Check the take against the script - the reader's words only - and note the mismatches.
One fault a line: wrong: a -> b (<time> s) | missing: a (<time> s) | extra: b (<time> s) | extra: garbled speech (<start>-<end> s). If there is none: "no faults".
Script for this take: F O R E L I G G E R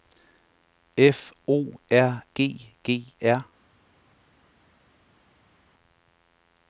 missing: E L I (2.2 s)
missing: E (3.1 s)